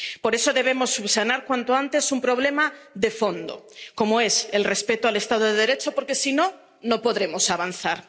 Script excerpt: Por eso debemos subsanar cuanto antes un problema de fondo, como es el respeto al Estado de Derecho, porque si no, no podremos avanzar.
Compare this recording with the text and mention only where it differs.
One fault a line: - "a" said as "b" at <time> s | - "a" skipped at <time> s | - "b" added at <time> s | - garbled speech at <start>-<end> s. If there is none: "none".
none